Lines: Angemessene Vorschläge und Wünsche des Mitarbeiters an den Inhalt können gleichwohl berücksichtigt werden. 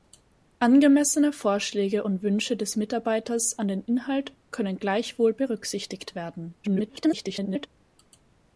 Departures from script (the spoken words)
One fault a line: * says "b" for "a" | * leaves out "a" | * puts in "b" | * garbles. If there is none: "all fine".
* garbles